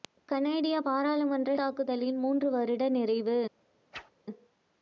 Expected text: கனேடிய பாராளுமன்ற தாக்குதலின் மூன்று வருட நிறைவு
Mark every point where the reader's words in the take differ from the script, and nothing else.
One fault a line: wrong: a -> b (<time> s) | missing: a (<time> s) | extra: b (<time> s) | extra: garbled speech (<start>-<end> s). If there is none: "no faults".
no faults